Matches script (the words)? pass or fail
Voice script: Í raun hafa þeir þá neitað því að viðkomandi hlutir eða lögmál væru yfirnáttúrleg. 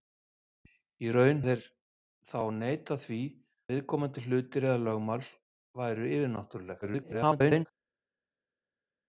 fail